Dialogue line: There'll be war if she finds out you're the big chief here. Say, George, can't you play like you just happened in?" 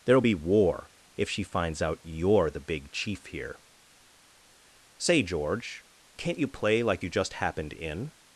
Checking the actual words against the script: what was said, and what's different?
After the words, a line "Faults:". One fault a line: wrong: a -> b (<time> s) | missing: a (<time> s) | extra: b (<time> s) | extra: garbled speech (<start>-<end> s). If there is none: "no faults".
There'll be war if she finds out you're the big chief here. Say, George, can't you play like you just happened in?"
Faults:
no faults